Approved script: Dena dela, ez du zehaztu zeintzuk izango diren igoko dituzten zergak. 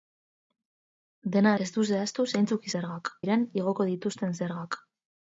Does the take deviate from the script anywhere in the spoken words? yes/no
yes